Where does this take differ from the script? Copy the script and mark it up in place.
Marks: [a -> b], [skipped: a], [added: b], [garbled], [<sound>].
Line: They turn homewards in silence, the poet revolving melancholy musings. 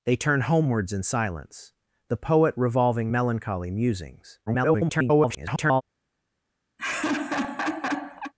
They turn homewards in silence, the poet revolving melancholy musings. [garbled] [laugh]